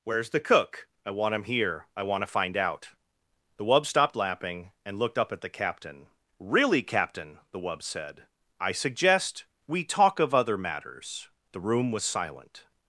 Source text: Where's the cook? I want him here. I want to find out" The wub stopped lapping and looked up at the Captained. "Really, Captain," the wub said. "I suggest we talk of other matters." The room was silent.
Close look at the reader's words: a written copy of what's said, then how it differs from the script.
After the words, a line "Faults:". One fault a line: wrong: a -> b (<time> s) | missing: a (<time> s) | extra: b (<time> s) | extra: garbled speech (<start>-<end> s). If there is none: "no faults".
Where's the cook? I want him here. I want to find out" The wub stopped lapping and looked up at the Captain. "Really, Captain," the wub said. "I suggest we talk of other matters." The room was silent.
Faults:
wrong: Captained -> Captain (5.5 s)